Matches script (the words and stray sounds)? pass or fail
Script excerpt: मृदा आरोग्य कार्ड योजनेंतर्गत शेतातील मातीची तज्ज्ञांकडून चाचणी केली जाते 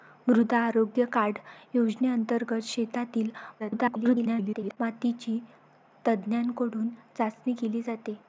fail